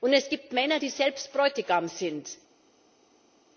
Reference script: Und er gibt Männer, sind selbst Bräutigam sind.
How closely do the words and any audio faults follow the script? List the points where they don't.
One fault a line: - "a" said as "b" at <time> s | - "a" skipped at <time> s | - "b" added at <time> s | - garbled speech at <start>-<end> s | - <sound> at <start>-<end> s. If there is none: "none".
- "er" said as "es" at 0.1 s
- "sind" said as "die" at 0.8 s